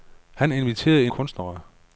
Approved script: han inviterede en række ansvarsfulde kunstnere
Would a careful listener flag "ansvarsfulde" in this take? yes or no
yes